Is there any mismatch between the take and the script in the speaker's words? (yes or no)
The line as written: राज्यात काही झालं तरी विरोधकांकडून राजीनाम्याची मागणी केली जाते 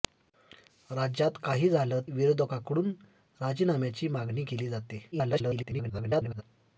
yes